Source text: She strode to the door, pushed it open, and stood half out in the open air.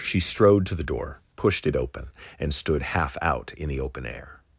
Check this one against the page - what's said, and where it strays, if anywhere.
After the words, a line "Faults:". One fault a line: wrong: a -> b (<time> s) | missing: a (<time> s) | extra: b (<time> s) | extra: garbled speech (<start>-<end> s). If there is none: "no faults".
She strode to the door, pushed it open, and stood half out in the open air.
Faults:
no faults